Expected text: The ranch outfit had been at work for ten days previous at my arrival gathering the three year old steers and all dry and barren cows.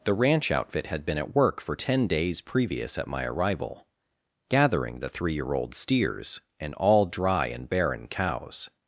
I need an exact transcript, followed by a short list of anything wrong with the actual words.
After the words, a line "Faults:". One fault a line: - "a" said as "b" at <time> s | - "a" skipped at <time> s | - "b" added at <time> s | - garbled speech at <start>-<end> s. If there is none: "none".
The ranch outfit had been at work for ten days previous at my arrival gathering the three year old steers and all dry and barren cows.
Faults:
none